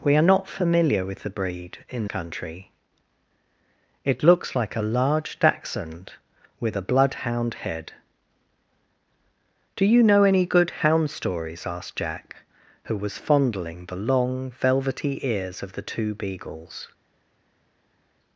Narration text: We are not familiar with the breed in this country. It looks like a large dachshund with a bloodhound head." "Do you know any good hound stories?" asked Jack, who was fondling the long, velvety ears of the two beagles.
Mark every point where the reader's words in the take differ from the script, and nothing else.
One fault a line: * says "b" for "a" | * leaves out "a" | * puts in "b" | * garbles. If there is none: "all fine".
* leaves out "this"